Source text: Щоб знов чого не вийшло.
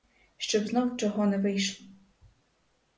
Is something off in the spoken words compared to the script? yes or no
no